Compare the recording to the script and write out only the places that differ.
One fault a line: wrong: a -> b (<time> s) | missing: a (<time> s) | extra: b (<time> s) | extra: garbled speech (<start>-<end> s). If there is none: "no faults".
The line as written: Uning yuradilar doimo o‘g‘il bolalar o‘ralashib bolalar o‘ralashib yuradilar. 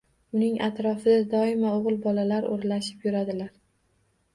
wrong: yuradilar -> atrofida (0.7 s)
missing: bolalar o‘ralashib (3.1 s)